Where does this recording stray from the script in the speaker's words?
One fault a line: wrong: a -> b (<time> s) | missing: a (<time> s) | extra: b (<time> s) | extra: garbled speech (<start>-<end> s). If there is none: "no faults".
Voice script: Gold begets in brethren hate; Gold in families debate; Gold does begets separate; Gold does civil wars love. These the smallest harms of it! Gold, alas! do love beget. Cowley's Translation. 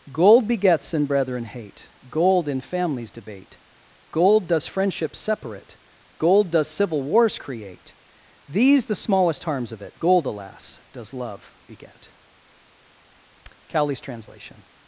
wrong: begets -> friendship (4.7 s)
wrong: love -> create (7.3 s)
wrong: do -> does (10.9 s)